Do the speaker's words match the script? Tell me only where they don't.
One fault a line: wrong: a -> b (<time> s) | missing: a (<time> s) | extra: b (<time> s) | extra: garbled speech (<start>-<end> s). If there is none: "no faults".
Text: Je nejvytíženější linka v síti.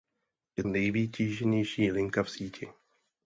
no faults